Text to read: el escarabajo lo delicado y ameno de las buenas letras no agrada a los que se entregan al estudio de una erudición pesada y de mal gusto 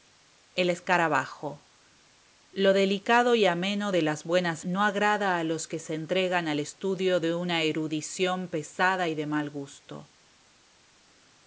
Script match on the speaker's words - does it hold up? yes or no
no